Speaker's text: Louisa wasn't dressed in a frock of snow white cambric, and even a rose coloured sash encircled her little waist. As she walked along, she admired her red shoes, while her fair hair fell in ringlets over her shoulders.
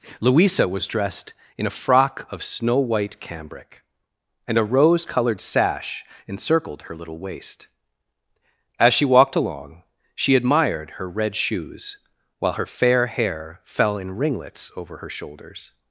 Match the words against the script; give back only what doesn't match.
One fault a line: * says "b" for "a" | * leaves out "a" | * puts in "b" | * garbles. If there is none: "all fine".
* says "was" for "wasn't"
* leaves out "even"